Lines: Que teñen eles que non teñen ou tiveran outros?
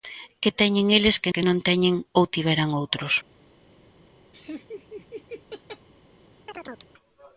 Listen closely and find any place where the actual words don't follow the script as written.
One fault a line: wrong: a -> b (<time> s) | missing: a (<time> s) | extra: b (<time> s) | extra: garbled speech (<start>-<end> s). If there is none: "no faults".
extra: que (1.3 s)